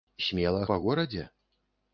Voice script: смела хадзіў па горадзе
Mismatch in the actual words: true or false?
true